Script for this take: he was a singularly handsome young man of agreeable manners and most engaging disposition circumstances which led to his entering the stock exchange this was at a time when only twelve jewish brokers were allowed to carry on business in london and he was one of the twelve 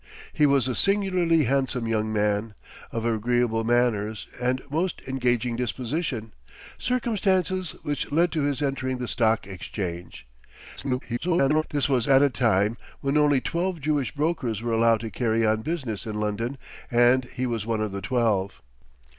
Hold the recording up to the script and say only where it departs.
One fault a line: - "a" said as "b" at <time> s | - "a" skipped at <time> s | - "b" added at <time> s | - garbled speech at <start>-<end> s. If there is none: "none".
- garbled speech at 10.8-11.6 s